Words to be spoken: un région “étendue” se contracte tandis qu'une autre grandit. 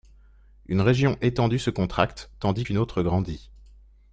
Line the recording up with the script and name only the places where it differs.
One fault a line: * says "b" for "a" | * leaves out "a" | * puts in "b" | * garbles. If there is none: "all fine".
* says "une" for "un"